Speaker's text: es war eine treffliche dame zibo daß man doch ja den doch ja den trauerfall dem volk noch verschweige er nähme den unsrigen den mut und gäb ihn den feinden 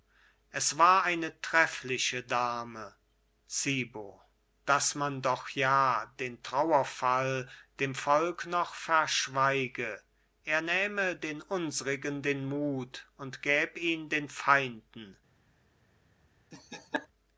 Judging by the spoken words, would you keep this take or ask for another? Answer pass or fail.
fail